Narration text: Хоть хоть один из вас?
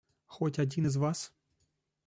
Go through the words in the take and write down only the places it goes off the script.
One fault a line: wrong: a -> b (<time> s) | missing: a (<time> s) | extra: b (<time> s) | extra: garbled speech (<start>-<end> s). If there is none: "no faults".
missing: хоть (0.6 s)